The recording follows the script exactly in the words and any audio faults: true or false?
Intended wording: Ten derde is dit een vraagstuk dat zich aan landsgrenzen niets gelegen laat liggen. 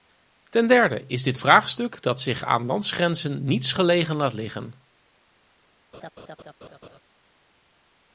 false